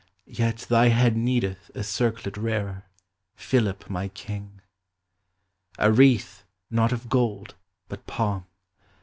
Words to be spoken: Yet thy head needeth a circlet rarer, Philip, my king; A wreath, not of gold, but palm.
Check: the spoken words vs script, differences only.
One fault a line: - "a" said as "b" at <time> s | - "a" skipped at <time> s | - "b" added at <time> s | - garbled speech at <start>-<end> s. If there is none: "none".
none